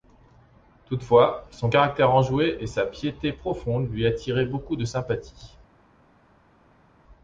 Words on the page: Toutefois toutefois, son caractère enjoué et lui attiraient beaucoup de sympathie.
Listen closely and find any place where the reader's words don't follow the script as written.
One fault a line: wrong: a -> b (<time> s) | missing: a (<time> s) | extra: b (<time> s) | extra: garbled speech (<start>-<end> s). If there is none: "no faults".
missing: toutefois (1.4 s)
extra: sa piété profonde (2.7 s)